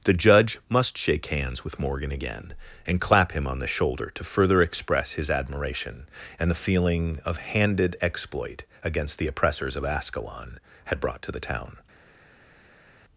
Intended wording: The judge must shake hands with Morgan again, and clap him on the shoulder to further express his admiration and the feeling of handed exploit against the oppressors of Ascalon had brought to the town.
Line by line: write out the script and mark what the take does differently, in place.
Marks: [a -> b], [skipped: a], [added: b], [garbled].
The judge must shake hands with Morgan again, and clap him on the shoulder to further express his admiration and the feeling of handed exploit against the oppressors of Ascalon had brought to the town.